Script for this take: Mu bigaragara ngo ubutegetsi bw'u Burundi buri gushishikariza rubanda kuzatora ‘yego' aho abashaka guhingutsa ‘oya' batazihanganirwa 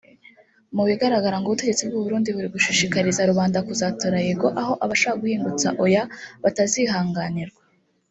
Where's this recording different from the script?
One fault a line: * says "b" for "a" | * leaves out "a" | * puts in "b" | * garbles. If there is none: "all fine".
all fine